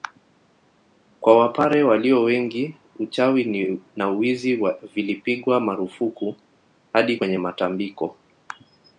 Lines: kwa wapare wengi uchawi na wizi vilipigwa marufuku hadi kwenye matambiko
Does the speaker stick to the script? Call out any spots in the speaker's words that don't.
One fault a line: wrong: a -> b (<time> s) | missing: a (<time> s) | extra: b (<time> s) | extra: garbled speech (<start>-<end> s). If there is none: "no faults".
extra: walio (1.8 s)